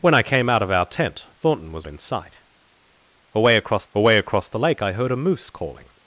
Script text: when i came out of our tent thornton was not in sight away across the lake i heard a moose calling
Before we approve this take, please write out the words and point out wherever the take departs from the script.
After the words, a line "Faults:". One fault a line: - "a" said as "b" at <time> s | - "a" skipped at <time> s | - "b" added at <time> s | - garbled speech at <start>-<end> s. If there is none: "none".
when i came out of our tent thornton was in sight away across away across the lake i heard a moose calling
Faults:
- "not" skipped at 1.9 s
- "away across" added at 4.0 s